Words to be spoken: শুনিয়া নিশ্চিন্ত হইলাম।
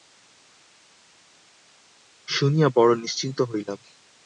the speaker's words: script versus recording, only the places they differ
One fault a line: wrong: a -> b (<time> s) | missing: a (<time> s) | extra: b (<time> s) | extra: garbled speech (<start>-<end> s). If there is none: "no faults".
extra: বড়ো (2.7 s)